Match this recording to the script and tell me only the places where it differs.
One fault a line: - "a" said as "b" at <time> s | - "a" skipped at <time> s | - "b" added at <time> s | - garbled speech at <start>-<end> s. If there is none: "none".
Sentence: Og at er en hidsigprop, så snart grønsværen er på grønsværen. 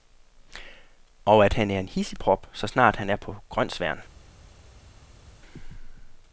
- "han" added at 1.5 s
- "grønsværen" said as "han" at 3.0 s